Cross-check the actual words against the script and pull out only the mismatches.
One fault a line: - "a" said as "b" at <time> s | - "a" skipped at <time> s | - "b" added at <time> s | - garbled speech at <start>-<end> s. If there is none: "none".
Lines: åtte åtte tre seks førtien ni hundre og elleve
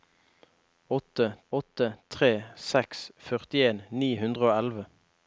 none